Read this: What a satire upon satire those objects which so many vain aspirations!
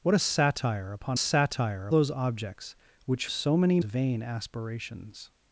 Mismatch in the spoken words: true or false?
false